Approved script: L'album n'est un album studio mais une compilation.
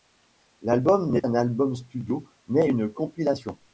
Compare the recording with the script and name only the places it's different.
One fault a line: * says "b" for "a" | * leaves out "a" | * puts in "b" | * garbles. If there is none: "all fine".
all fine